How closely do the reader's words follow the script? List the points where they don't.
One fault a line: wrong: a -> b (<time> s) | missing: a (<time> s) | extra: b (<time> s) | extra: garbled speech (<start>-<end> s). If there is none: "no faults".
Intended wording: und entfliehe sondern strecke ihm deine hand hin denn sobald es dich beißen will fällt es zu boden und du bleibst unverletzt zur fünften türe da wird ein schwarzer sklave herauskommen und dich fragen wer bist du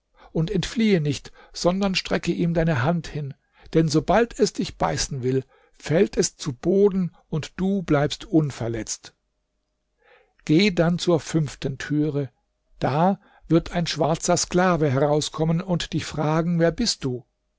extra: nicht (1.0 s)
extra: geh dann (10.4 s)